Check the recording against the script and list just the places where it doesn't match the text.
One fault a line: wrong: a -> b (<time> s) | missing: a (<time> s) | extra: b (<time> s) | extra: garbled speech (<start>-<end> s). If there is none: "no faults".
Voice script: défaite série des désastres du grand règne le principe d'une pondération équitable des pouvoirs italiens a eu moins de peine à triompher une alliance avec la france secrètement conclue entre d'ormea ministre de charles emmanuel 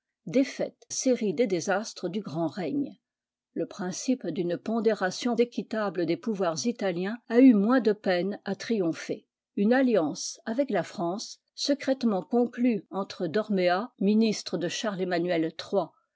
no faults